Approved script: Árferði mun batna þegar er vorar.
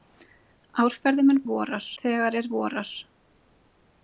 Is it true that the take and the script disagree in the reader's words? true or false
true